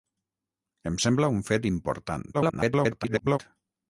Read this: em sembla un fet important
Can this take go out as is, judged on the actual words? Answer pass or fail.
fail